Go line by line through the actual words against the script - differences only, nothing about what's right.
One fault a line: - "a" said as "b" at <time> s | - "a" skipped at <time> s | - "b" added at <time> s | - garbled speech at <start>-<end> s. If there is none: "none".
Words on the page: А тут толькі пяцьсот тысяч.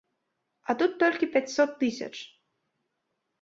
none